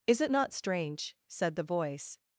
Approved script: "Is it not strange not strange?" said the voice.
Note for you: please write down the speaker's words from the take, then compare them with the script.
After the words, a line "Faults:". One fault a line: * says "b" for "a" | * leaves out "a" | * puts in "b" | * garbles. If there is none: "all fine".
"Is it not strange?" said the voice.
Faults:
* leaves out "not strange"